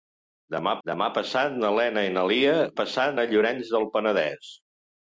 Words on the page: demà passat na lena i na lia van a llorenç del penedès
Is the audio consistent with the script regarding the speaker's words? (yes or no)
no